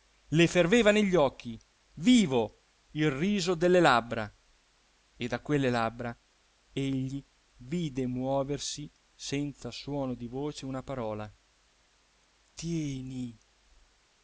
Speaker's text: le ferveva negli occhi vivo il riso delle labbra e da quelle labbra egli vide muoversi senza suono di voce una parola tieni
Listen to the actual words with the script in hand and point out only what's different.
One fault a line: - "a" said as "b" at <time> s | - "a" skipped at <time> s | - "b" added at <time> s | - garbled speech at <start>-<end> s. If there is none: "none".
none